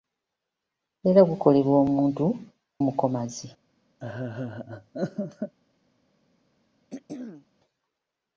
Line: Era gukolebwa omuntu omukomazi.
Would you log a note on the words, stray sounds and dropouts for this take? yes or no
yes